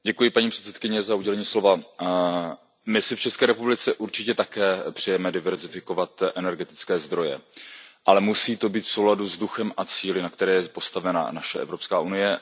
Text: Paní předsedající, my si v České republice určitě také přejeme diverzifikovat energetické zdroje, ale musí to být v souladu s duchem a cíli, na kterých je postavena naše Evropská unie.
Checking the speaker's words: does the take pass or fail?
pass